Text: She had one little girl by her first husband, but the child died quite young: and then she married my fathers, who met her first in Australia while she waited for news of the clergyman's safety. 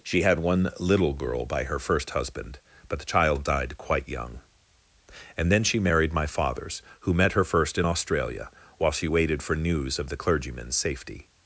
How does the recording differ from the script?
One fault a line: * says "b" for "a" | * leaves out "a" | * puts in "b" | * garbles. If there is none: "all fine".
all fine